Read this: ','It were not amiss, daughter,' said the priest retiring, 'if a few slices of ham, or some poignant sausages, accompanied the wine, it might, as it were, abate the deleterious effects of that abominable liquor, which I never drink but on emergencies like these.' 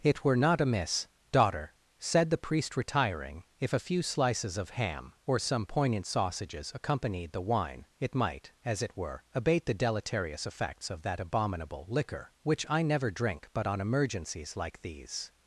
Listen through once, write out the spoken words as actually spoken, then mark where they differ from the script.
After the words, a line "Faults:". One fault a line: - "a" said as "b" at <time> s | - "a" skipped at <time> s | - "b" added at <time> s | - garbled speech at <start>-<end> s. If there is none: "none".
','It were not amiss, daughter,' said the priest retiring, 'if a few slices of ham, or some poignant sausages, accompanied the wine, it might, as it were, abate the deleterious effects of that abominable liquor, which I never drink but on emergencies like these.'
Faults:
none